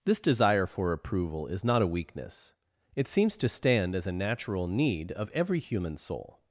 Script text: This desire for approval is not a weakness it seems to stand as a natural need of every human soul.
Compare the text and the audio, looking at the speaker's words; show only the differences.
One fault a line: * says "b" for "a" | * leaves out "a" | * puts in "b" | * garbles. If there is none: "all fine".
all fine